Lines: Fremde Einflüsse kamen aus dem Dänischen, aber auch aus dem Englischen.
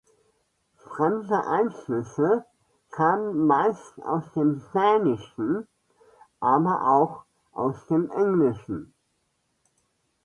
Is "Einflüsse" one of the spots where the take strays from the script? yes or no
no